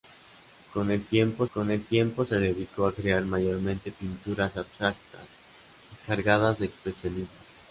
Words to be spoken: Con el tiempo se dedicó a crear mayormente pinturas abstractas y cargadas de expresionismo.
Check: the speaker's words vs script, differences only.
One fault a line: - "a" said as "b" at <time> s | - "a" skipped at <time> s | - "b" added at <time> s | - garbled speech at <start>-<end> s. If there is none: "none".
- "con el tiempo" added at 1.5 s